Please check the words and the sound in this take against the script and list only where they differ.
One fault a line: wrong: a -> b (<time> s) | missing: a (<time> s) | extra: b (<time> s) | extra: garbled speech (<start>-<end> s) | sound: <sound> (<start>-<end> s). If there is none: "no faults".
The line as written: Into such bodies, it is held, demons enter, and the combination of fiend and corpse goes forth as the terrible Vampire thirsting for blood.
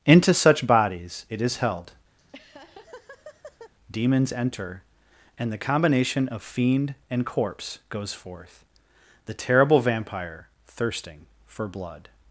sound: laugh (2.2-3.7 s)
missing: as (8.6 s)